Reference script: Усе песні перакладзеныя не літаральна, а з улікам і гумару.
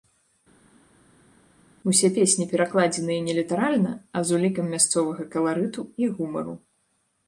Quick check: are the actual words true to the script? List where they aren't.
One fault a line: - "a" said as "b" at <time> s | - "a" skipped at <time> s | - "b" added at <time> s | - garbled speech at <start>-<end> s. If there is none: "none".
- "мясцовага каларыту" added at 4.8 s